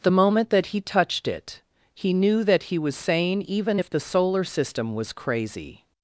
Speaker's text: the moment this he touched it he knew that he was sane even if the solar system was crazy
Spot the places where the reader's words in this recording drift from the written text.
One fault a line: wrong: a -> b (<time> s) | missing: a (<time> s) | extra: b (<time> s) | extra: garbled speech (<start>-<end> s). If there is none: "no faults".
wrong: this -> that (0.5 s)